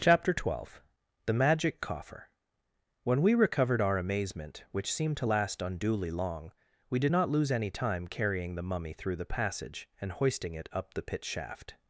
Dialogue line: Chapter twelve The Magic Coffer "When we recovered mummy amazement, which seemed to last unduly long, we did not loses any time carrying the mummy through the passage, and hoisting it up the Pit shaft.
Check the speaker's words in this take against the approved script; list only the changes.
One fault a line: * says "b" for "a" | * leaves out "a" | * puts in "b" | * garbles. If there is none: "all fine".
* says "our" for "mummy"
* says "lose" for "loses"